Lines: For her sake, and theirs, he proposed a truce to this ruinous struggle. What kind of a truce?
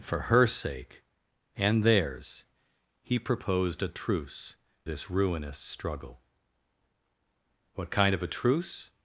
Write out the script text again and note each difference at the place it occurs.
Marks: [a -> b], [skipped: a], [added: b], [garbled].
For her sake, and theirs, he proposed a truce [skipped: to] this ruinous struggle. What kind of a truce?